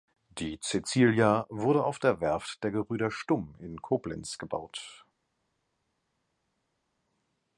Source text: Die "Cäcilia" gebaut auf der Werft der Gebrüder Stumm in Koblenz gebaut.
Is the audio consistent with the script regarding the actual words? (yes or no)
no